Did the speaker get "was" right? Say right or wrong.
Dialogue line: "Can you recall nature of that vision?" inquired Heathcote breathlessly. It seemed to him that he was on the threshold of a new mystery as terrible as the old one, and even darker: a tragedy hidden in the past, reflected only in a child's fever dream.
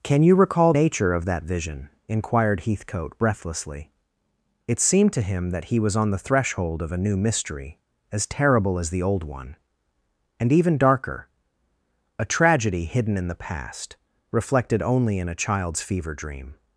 right